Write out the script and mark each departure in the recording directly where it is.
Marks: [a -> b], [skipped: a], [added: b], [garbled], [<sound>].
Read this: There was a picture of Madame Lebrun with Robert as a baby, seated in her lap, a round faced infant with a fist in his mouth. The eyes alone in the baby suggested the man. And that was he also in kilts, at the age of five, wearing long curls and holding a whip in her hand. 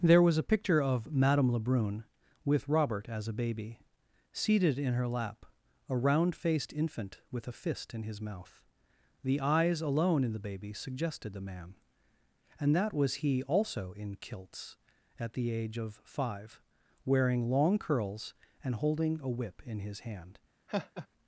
There was a picture of Madame Lebrun with Robert as a baby, seated in her lap, a round faced infant with a fist in his mouth. The eyes alone in the baby suggested the man. And that was he also in kilts, at the age of five, wearing long curls and holding a whip in [her -> his] hand. [laugh]